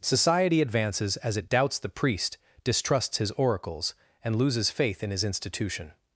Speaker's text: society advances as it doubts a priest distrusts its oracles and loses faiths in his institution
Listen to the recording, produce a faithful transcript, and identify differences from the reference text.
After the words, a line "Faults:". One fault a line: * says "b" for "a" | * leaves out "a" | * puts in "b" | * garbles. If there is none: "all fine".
society advances as it doubts the priest distrusts his oracles and loses faith in his institution
Faults:
* says "the" for "a"
* says "his" for "its"
* says "faith" for "faiths"